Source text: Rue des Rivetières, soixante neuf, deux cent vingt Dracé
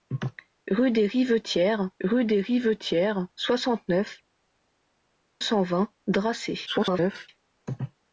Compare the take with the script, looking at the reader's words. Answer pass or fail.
fail